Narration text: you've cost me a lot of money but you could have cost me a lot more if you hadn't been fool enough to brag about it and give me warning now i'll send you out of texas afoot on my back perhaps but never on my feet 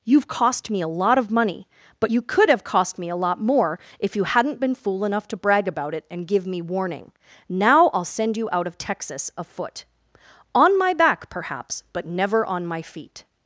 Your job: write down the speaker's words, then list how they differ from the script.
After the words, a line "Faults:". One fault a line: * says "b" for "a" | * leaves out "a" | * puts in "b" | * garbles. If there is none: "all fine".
you've cost me a lot of money but you could have cost me a lot more if you hadn't been fool enough to brag about it and give me warning now i'll send you out of texas afoot on my back perhaps but never on my feet
Faults:
all fine